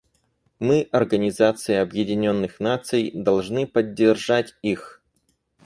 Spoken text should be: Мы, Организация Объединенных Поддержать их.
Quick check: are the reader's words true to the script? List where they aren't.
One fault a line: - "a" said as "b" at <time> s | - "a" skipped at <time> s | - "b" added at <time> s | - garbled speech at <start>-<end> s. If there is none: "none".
- "Наций должны" added at 2.6 s